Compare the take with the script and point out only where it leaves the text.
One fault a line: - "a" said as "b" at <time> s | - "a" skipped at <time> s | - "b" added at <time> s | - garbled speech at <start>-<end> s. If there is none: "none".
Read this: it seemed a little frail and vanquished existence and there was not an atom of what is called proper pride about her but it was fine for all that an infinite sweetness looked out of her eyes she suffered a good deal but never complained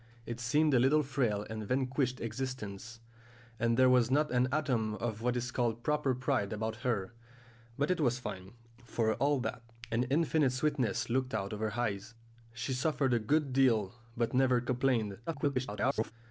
- garbled speech at 15.3-16.1 s